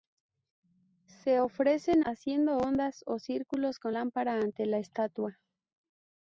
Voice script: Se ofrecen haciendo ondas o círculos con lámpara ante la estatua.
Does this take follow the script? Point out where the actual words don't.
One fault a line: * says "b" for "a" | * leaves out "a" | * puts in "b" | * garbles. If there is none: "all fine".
all fine